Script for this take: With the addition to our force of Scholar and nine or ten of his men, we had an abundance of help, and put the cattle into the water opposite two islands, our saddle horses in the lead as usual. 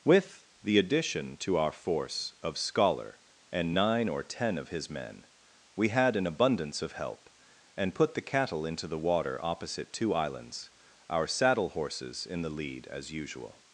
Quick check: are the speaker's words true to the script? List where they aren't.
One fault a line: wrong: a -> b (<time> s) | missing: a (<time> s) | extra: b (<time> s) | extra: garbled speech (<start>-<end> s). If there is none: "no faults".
no faults